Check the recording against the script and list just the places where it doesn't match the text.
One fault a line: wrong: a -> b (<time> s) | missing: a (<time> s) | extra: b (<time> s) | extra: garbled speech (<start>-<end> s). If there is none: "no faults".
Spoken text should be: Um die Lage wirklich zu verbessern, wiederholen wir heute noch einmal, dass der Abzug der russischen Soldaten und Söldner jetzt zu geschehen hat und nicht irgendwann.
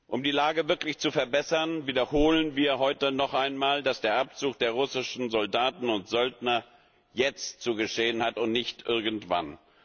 no faults